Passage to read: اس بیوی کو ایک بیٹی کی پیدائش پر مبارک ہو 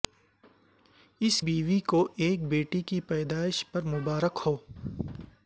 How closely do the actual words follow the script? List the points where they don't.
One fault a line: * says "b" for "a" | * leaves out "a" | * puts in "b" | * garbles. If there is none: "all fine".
all fine